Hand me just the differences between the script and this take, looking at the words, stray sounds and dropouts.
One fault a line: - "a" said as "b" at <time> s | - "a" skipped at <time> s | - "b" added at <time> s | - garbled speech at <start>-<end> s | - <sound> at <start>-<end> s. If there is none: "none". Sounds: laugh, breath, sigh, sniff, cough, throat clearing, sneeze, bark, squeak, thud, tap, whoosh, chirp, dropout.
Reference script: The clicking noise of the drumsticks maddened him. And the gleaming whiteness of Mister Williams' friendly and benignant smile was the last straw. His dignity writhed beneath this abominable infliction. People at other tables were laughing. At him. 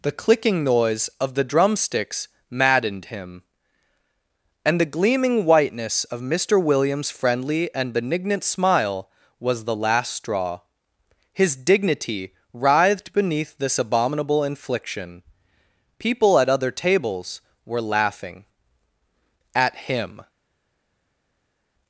none